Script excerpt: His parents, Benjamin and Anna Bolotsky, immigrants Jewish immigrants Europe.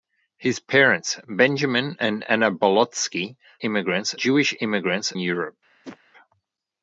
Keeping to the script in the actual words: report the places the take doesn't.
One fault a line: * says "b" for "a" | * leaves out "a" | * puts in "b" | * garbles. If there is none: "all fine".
all fine